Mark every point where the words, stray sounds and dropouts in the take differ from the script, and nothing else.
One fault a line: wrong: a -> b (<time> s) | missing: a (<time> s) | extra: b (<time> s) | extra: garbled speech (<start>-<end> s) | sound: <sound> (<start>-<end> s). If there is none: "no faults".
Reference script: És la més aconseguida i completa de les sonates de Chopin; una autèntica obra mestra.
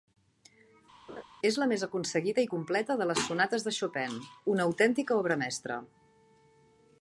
sound: laugh (1.1-1.2 s)